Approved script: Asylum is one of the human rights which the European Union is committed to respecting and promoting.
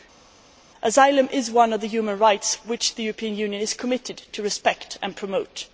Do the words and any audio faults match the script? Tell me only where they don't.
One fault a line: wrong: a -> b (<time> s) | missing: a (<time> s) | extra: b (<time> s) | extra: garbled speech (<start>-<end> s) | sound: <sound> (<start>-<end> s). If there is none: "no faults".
no faults